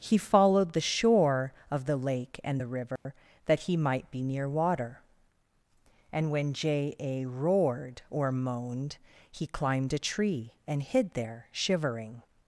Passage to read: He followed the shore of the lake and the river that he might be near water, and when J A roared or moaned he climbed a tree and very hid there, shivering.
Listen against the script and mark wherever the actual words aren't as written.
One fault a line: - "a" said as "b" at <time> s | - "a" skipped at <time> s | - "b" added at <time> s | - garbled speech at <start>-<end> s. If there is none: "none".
- "very" skipped at 10.8 s